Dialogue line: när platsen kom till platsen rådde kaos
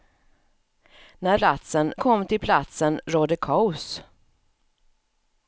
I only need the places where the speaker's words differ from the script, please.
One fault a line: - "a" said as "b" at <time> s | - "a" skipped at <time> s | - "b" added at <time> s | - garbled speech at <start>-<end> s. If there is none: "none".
none